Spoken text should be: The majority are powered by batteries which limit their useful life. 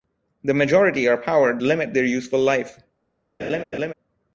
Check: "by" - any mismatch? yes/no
yes